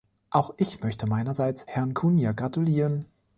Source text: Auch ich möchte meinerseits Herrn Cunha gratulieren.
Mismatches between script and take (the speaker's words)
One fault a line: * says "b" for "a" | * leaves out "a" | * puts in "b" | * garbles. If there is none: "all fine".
all fine